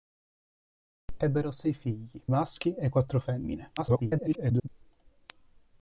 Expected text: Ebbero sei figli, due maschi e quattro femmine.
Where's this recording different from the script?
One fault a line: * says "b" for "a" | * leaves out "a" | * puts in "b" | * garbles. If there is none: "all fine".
* leaves out "due"
* garbles